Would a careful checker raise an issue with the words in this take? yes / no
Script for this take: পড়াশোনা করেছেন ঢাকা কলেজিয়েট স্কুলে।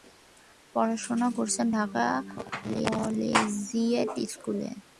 no